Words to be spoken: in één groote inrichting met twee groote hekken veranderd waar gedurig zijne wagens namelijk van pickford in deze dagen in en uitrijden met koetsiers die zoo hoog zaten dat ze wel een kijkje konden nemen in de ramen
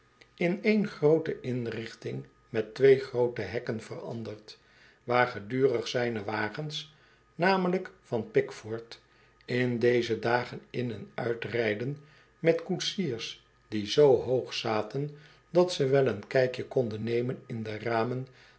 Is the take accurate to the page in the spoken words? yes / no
yes